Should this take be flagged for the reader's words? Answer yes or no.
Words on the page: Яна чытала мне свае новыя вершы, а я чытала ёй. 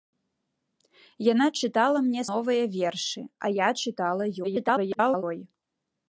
yes